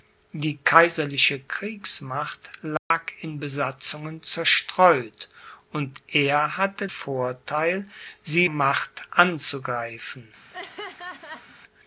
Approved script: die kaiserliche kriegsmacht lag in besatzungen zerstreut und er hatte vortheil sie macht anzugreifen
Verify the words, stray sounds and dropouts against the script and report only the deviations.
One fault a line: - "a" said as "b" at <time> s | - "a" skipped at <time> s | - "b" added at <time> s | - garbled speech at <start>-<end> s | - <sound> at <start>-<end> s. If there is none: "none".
- dropout at 2.8-2.9 s
- laugh at 10.5-11.6 s